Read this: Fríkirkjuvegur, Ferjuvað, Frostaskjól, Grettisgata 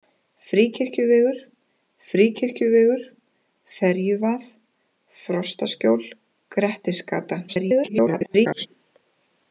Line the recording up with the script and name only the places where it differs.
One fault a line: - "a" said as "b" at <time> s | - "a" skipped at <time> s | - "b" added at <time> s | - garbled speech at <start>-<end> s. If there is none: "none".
- "fríkirkjuvegur" added at 2.1 s
- garbled speech at 7.5-8.7 s